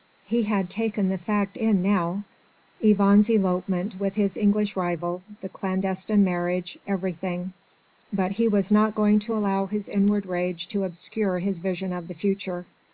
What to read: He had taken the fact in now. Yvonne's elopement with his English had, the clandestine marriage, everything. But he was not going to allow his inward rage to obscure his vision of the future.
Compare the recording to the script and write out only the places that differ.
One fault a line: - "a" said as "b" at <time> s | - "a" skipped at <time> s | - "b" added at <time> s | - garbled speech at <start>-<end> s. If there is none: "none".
- "had" said as "rival" at 4.8 s